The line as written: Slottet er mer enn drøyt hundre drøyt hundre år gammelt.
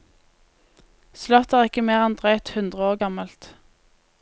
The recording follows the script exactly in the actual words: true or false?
false